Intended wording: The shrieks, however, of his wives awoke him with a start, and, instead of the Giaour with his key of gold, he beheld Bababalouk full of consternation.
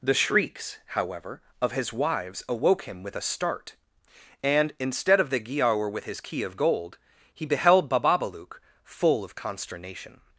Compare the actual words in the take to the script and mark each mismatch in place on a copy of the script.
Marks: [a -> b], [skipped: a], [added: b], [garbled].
The shrieks, however, of his wives awoke him with a start, and, instead of the Giaour with his key of gold, he beheld Bababalouk full of consternation.